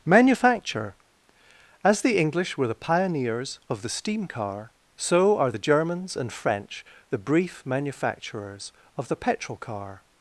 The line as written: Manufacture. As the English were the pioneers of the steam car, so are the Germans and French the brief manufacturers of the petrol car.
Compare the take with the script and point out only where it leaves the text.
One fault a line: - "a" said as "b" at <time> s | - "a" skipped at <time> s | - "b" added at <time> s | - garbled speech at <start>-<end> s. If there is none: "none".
none